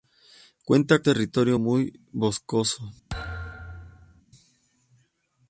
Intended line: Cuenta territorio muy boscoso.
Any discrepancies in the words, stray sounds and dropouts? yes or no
yes